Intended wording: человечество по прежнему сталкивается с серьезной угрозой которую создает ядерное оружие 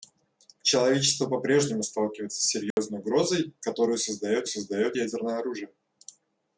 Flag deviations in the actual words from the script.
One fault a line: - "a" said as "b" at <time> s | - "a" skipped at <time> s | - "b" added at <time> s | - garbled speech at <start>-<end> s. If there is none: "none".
- "создает" added at 4.5 s